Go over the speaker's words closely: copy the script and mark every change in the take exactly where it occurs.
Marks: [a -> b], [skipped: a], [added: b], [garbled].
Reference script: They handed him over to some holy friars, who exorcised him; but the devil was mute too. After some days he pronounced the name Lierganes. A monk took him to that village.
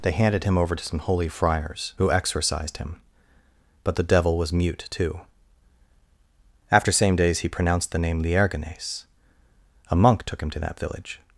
They handed him over to some holy friars, who exorcised him; but the devil was mute too. After [some -> same] days he pronounced the name Lierganes. A monk took him to that village.